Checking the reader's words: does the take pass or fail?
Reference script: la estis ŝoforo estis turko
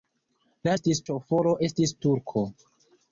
pass